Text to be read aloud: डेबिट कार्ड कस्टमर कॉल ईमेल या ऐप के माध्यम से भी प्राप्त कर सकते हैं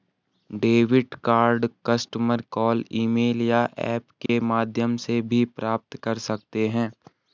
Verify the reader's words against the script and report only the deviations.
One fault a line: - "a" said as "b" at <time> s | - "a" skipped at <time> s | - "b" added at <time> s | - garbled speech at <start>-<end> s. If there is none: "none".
none